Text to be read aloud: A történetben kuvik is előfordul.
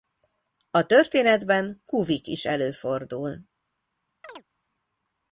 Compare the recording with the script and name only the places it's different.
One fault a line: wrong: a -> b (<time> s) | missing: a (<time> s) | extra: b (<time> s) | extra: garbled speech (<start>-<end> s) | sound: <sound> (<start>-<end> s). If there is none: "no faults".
sound: chirp (4.2-4.4 s)